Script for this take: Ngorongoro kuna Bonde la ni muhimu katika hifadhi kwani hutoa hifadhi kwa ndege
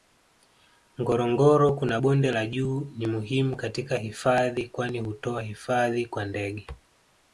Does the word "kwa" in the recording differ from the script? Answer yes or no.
no